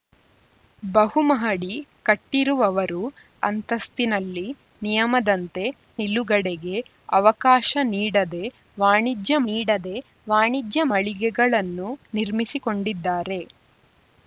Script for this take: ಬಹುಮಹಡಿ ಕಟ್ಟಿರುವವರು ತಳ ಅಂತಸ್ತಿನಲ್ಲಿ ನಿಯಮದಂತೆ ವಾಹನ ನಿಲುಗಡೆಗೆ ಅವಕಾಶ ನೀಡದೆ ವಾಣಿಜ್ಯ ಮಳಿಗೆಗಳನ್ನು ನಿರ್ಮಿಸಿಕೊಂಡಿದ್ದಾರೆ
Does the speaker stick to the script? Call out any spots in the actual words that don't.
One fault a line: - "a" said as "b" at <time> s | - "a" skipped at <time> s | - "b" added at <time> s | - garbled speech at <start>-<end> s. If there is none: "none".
- "ತಳ" skipped at 3.0 s
- "ವಾಹನ" skipped at 5.6 s
- "ನೀಡದೆ ವಾಣಿಜ್ಯ" added at 9.5 s